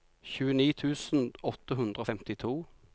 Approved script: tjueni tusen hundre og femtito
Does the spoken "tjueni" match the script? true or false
true